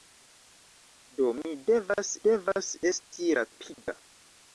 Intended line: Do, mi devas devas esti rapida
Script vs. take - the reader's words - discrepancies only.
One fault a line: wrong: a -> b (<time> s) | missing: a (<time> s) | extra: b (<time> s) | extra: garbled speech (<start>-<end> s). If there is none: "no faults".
no faults